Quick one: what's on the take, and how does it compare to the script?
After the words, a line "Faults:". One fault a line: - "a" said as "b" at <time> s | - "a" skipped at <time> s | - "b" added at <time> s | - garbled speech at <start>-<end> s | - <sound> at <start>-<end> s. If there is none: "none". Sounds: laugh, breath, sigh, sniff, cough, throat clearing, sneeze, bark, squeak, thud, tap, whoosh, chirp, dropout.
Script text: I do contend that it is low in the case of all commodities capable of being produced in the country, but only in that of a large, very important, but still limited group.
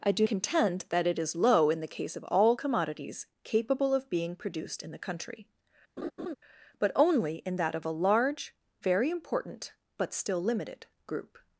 I do contend that it is low in the case of all commodities capable of being produced in the country, but only in that of a large, very important, but still limited group.
Faults:
- laugh at 6.0-6.3 s